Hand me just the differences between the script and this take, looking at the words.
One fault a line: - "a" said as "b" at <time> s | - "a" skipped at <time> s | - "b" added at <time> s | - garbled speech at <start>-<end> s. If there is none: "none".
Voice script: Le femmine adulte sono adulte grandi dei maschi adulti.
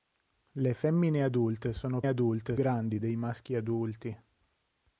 none